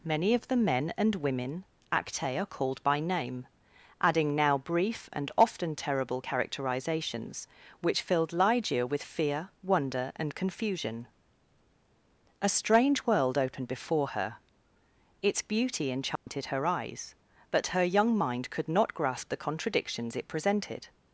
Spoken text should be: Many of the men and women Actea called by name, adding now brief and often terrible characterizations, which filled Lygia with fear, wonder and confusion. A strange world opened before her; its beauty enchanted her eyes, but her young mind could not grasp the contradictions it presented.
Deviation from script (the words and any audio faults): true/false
true